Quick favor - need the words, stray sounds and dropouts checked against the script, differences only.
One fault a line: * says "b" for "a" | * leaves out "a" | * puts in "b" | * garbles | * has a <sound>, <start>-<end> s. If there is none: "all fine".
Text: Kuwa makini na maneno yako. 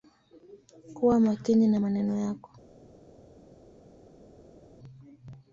all fine